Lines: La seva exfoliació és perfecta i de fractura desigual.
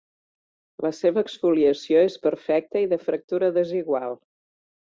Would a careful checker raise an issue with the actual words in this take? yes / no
no